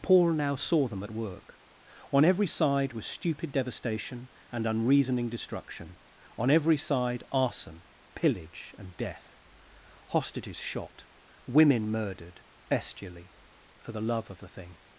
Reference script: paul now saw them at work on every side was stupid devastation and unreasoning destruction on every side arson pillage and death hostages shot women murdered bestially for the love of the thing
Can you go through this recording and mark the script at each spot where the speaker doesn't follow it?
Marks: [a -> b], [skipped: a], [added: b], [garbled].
paul now saw them at work on every side was stupid devastation and unreasoning destruction on every side arson pillage and death hostages shot women murdered bestially for the love of the thing